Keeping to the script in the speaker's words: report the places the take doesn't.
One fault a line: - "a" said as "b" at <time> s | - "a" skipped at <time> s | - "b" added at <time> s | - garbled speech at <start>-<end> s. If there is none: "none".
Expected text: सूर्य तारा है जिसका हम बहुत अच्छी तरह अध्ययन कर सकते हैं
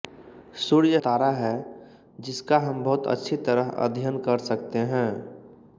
none